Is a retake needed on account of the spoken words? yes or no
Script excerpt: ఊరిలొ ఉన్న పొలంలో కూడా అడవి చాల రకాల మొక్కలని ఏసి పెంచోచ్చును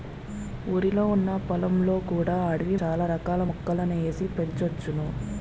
no